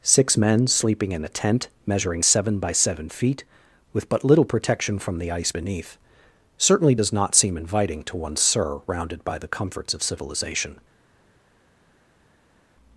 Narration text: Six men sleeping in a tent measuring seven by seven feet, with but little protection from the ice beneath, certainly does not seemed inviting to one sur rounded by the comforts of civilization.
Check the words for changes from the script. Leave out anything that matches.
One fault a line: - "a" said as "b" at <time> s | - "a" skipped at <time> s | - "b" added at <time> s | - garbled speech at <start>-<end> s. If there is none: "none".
- "seemed" said as "seem" at 7.4 s